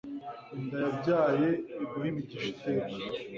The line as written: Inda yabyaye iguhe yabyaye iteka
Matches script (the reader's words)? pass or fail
fail